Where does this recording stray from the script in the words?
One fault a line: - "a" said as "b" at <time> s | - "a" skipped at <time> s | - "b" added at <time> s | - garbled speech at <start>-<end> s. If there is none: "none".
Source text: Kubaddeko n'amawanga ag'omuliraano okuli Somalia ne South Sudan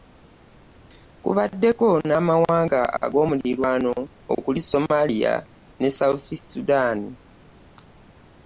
none